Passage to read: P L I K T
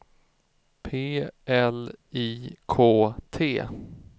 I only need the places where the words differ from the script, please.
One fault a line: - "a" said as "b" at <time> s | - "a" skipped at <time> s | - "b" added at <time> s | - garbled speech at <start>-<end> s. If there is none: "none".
none